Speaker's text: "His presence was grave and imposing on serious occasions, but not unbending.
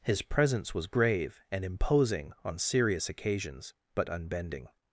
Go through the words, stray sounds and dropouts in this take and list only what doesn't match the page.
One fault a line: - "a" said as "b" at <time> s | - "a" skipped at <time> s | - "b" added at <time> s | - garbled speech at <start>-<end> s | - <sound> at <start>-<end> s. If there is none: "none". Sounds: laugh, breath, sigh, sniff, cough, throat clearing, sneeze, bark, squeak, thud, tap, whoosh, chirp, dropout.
- "not" skipped at 4.1 s